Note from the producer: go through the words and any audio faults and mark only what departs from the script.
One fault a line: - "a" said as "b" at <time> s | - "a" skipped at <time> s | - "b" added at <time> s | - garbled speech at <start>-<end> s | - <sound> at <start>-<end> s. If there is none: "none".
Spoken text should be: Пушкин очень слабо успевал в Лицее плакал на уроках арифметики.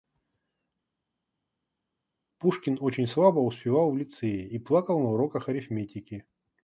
- "и" added at 4.5 s